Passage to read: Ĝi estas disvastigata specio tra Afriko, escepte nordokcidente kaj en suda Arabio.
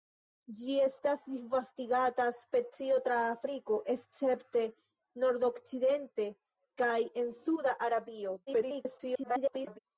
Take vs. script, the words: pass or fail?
fail